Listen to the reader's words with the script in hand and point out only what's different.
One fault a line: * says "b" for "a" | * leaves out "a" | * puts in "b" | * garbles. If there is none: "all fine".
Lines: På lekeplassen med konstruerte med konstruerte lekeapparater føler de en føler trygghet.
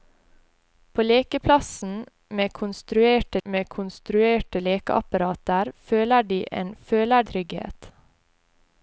all fine